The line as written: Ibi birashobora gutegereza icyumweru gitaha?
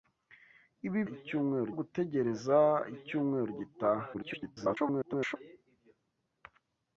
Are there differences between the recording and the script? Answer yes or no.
yes